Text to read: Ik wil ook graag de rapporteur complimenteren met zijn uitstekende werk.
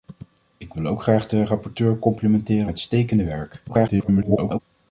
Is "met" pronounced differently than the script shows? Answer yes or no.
yes